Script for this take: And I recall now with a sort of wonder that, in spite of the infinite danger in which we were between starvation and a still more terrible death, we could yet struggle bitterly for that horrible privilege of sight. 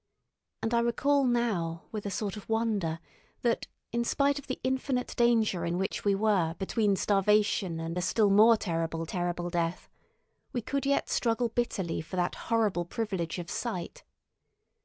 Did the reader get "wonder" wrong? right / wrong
right